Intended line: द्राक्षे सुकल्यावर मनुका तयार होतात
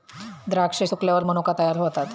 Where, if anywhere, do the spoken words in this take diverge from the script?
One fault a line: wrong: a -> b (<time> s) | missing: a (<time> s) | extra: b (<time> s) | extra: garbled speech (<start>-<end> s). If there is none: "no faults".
no faults